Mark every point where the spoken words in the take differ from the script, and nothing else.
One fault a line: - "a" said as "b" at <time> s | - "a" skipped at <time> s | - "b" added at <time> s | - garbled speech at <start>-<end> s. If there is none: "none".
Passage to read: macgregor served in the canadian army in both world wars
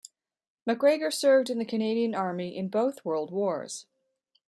none